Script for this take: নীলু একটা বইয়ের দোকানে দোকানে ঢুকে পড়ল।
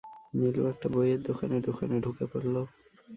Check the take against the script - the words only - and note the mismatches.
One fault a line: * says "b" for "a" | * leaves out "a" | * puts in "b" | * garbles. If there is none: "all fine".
all fine